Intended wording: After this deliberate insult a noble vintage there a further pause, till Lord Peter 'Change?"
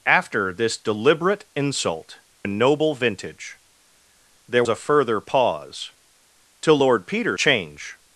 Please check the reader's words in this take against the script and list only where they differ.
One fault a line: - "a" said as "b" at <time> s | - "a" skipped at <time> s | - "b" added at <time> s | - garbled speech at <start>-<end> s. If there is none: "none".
none